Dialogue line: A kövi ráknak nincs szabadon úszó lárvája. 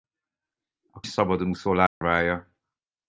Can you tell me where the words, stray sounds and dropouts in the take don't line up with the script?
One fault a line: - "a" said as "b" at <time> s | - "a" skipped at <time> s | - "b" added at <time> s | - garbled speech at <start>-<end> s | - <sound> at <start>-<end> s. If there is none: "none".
- "kövi ráknak nincs" skipped at 1.0 s
- dropout at 1.9-2.0 s